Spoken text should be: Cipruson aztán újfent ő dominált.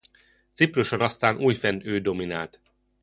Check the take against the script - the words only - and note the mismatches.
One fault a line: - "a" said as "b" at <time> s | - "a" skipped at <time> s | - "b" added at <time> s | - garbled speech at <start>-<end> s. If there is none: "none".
none